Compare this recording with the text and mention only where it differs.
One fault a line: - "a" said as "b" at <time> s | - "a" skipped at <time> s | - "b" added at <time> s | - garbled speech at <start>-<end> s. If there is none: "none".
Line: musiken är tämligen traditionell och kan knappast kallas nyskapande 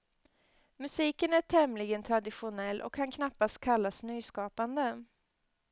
none